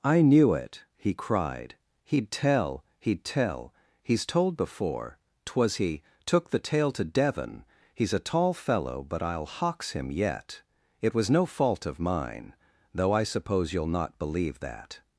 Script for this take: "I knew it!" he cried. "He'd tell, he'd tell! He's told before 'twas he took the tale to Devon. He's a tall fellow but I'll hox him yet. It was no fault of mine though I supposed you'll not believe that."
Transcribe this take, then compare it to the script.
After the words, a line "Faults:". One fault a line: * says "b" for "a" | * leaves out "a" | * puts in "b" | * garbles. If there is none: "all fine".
"I knew it!" he cried. "He'd tell, he'd tell! He's told before 'twas he took the tale to Devon. He's a tall fellow but I'll hox him yet. It was no fault of mine though I suppose you'll not believe that."
Faults:
* says "suppose" for "supposed"